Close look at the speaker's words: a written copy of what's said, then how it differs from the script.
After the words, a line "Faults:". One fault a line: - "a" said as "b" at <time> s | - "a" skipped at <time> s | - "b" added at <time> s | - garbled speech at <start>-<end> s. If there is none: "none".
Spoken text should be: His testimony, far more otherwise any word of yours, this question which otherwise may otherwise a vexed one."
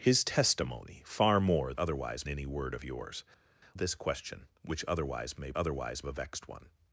His testimony, far more otherwise any word of yours, this question which otherwise may otherwise a vexed one."
Faults:
none